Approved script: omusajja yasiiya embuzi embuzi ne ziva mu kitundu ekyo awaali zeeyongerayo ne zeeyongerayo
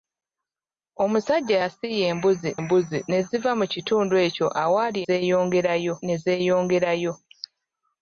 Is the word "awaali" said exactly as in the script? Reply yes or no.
yes